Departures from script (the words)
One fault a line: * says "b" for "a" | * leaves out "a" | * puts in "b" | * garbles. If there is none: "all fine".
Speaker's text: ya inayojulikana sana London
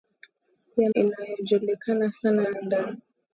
all fine